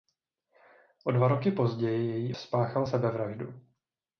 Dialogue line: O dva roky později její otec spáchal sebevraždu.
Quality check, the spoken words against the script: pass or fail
fail